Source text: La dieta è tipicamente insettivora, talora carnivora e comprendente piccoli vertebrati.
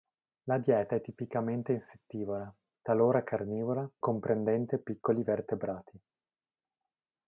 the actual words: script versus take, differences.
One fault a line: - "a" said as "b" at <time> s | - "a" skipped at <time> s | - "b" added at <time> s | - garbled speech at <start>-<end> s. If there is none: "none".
- "e" skipped at 3.9 s